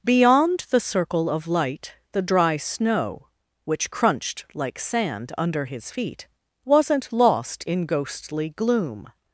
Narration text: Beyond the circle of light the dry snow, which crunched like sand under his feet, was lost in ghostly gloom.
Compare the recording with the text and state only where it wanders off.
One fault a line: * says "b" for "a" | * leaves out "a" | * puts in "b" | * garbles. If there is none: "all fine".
* says "wasn't" for "was"